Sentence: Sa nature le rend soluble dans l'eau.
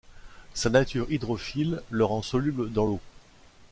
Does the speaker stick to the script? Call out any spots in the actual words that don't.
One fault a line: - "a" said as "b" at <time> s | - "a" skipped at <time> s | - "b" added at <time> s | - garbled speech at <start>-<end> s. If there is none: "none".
- "hydrophile" added at 1.1 s